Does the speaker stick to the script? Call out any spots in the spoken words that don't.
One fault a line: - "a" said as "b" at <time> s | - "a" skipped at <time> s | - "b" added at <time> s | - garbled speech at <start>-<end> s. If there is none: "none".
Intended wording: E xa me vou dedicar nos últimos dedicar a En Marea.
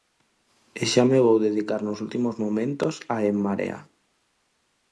- "dedicar" said as "momentos" at 2.4 s